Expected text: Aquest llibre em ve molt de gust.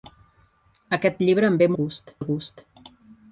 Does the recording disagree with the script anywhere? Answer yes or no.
yes